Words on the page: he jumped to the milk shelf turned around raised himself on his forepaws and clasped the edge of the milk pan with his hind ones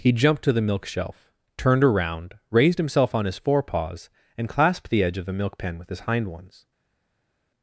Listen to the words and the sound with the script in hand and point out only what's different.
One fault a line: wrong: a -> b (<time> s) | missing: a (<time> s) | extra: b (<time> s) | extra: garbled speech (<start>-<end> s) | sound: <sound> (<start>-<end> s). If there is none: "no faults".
no faults